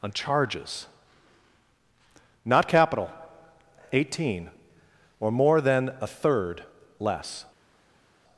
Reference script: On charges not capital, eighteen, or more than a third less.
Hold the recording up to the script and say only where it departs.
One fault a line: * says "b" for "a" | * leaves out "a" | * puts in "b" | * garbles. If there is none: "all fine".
all fine